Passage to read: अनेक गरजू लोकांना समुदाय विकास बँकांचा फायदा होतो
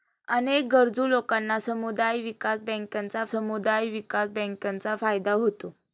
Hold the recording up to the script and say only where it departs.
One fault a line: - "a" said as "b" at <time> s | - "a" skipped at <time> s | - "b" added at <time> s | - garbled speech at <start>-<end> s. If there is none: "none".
- "समुदाय विकास बँकांचा" added at 3.2 s